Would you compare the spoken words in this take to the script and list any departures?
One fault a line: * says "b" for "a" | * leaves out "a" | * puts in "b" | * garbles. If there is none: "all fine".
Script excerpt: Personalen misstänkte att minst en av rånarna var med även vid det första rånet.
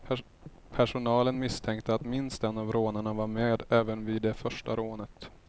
all fine